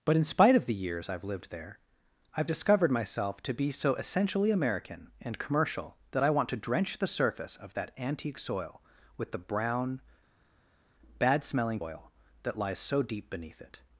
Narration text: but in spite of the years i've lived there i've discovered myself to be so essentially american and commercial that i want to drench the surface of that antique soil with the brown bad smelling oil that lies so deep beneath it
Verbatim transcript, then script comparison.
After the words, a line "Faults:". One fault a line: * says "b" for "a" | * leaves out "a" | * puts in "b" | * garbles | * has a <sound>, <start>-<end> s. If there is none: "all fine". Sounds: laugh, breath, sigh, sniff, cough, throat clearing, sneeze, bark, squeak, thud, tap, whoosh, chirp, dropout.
but in spite of the years i've lived there i've discovered myself to be so essentially american and commercial that i want to drench the surface of that antique soil with the brown bad smelling oil that lies so deep beneath it
Faults:
all fine